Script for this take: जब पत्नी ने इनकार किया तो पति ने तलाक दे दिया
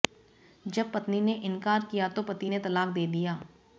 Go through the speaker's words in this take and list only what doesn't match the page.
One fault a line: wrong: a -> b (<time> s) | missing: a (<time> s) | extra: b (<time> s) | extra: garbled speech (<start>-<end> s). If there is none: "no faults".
no faults